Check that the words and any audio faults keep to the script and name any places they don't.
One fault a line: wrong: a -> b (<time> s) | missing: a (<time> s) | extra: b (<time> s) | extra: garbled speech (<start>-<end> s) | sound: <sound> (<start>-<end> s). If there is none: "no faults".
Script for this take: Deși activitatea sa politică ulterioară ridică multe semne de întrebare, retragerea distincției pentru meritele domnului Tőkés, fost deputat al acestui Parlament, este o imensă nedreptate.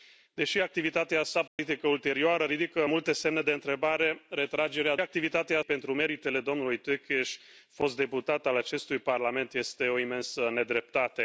sound: dropout (1.5-1.6 s)
wrong: distincției -> activitatea (5.0 s)